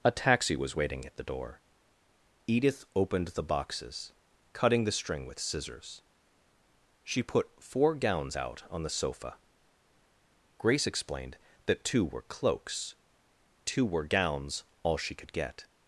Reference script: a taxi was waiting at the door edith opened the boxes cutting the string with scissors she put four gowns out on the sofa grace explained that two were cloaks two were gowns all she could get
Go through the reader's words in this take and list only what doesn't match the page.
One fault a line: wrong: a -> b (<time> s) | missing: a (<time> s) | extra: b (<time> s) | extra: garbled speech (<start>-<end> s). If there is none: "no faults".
no faults